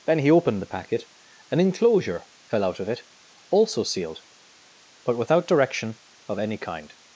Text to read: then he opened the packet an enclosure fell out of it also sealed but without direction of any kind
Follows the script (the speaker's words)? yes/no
yes